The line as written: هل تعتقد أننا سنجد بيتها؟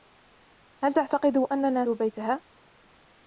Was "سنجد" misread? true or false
true